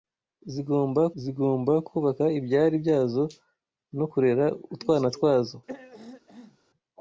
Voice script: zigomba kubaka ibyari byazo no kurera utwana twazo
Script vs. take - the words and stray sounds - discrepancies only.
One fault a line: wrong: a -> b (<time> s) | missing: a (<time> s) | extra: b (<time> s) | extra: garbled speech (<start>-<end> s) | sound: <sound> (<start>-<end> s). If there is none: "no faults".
extra: zigomba (1.2 s)
sound: throat clearing (5.7-6.6 s)